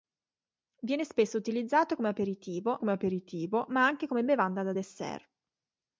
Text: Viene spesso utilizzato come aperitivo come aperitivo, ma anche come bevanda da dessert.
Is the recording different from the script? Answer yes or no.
no